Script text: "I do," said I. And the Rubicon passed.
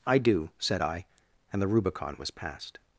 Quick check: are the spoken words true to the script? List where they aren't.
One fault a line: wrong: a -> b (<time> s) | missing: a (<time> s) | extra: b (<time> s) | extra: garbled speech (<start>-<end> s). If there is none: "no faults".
extra: was (2.2 s)